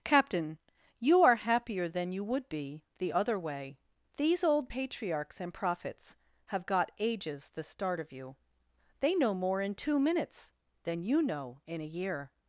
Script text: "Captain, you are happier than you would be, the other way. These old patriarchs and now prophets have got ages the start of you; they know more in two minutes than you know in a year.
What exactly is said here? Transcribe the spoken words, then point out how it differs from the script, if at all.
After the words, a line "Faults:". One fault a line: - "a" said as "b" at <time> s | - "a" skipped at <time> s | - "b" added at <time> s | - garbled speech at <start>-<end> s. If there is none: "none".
"Captain, you are happier than you would be, the other way. These old patriarchs and prophets have got ages the start of you; they know more in two minutes than you know in a year.
Faults:
- "now" skipped at 5.5 s